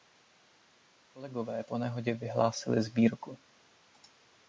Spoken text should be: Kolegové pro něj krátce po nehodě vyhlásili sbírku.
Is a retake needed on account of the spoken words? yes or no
yes